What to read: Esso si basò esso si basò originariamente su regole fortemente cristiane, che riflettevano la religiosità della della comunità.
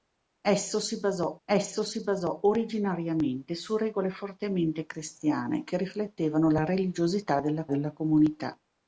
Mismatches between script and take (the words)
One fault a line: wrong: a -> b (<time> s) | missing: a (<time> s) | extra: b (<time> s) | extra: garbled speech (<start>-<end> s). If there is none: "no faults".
no faults